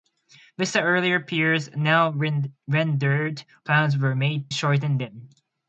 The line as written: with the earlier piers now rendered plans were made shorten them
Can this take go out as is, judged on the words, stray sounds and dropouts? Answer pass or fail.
pass